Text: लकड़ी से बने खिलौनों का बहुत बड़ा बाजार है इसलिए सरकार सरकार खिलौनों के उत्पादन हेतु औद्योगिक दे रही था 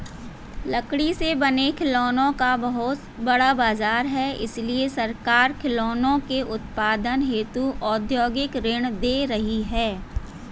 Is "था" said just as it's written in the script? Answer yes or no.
no